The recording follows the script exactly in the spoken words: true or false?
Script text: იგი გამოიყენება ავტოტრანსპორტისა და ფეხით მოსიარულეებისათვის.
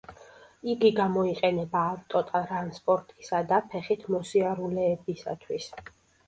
true